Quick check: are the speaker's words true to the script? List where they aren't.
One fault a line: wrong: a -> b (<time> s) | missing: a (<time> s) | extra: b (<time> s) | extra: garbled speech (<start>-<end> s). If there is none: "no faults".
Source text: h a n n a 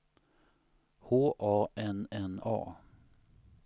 no faults